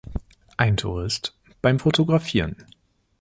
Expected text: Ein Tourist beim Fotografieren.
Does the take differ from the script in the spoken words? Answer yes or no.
no